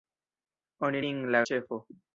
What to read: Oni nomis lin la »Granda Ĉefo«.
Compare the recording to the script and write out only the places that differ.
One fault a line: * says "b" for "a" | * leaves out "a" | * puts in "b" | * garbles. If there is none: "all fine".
* leaves out "nomis"
* leaves out "Granda"